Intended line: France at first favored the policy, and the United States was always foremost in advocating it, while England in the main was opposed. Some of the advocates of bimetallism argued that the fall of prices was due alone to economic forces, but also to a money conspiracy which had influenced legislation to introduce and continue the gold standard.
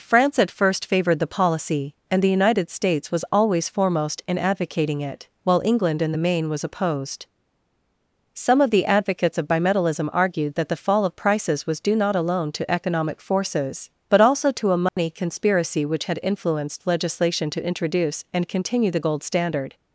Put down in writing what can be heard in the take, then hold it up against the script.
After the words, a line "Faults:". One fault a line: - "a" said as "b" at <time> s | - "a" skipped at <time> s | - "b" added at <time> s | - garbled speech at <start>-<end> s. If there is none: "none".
France at first favored the policy, and the United States was always foremost in advocating it, while England in the main was opposed. Some of the advocates of bimetallism argued that the fall of prices was due not alone to economic forces, but also to a money conspiracy which had influenced legislation to introduce and continue the gold standard.
Faults:
- "not" added at 12.0 s